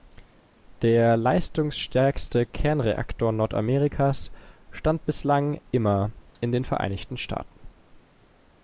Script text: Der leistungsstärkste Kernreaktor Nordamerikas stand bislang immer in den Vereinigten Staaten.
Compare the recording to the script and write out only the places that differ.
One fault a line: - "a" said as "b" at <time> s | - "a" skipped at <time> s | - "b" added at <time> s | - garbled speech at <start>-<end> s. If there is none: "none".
none